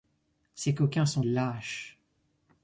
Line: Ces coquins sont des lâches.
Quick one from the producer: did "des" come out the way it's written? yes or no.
no